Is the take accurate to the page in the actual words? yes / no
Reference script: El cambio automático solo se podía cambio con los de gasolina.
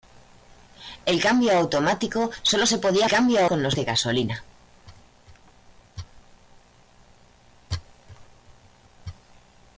yes